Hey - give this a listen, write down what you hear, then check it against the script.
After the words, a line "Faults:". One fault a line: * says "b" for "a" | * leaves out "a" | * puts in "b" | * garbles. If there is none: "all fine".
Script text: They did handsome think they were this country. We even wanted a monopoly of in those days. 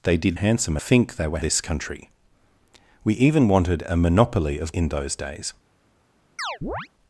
They did handsome think they were this country. We even wanted a monopoly of in those days.
Faults:
all fine